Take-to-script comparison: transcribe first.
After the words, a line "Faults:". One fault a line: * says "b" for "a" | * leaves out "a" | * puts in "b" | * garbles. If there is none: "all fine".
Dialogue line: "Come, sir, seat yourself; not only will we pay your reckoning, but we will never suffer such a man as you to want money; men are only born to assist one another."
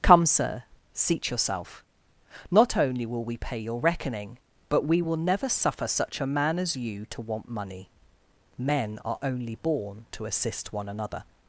"Come, sir, seat yourself; not only will we pay your reckoning, but we will never suffer such a man as you to want money; men are only born to assist one another."
Faults:
all fine